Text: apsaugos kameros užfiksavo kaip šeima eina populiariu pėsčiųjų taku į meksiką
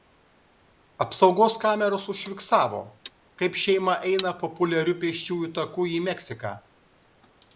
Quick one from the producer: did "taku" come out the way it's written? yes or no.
yes